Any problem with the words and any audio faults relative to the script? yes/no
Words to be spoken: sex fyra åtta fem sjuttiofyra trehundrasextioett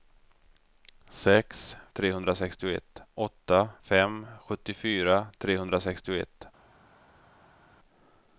yes